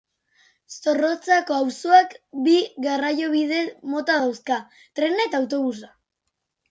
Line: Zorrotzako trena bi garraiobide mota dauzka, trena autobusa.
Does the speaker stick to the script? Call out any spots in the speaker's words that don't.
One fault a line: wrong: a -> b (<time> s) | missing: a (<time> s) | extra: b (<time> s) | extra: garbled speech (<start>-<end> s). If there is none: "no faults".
wrong: trena -> auzoak (1.6 s)
extra: eta (5.3 s)